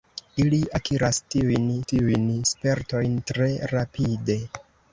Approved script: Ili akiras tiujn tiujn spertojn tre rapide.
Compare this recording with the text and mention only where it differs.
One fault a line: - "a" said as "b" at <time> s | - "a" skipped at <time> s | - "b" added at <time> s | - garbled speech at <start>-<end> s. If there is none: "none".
none